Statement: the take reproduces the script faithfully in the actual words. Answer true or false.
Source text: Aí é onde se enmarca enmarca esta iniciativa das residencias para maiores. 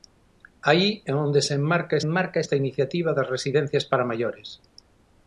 true